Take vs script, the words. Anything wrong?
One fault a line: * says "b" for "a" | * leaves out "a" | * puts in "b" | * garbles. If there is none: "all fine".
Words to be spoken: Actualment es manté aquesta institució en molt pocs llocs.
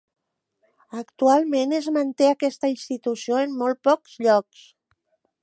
all fine